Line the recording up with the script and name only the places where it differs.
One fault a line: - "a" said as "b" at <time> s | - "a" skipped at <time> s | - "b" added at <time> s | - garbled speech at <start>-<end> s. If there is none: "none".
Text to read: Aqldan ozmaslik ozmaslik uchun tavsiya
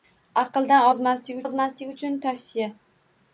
none